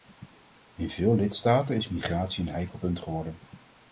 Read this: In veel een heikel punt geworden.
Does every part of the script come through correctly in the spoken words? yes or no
no